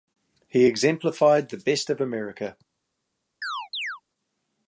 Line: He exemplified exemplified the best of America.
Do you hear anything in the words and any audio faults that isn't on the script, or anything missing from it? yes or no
yes